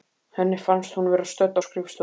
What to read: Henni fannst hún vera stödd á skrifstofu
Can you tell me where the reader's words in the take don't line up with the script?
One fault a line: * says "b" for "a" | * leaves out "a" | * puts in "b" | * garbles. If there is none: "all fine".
all fine